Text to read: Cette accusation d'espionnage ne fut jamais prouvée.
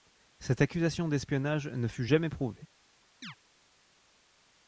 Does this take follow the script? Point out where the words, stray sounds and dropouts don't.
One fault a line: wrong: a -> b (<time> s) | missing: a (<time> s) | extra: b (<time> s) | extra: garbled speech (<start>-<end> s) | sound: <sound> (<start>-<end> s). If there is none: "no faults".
sound: chirp (3.2-3.4 s)